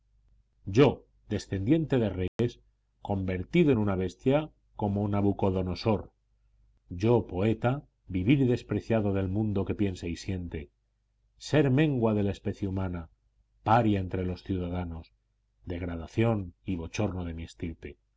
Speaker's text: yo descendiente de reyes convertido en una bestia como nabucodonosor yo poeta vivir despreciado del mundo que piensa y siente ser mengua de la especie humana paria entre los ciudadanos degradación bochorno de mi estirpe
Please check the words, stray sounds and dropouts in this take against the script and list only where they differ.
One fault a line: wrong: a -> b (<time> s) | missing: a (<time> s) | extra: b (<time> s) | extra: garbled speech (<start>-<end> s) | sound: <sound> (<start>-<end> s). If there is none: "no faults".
sound: dropout (2.3-2.4 s)
extra: y (16.6 s)